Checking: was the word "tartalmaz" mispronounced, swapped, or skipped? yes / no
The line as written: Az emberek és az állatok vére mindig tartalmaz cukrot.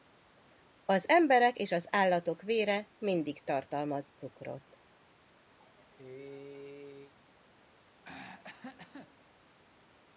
no